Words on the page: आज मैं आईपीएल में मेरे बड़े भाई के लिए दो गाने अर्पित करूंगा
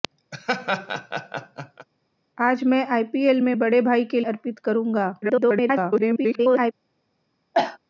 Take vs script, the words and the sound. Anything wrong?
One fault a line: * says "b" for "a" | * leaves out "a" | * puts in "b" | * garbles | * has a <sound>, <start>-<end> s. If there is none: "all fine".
* has a laugh, 0.3-1.9 s
* leaves out "मेरे"
* leaves out "लिए दो गाने"
* garbles
* has a cough, 7.5-7.8 s